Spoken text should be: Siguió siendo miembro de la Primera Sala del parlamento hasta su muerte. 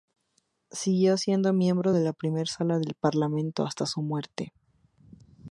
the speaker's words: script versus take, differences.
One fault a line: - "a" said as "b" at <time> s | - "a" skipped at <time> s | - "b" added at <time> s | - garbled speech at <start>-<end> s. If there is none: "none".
none